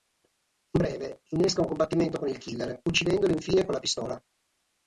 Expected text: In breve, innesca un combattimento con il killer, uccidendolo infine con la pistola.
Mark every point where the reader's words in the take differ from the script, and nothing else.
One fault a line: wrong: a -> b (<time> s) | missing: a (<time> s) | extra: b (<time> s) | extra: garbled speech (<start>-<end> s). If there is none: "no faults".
no faults